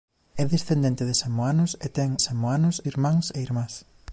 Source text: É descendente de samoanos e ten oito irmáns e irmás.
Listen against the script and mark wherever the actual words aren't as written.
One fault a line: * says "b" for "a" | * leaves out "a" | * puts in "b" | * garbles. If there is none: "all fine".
* says "samoanos" for "oito"